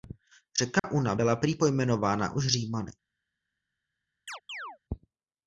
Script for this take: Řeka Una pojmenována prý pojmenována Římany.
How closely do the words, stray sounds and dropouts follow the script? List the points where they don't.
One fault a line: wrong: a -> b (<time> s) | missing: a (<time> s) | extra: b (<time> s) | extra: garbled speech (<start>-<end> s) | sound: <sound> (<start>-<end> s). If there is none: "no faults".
sound: dropout (0.8-0.8 s)
wrong: pojmenována -> byla (1.1 s)
extra: už (2.3 s)
sound: chirp (4.3-4.8 s)